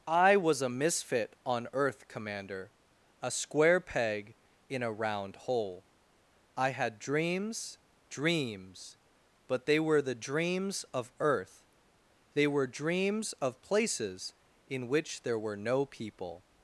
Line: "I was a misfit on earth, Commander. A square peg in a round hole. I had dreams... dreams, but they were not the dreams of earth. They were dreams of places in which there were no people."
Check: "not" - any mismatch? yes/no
yes